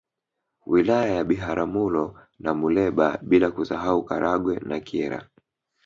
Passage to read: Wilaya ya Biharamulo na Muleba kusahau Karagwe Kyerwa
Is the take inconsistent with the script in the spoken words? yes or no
yes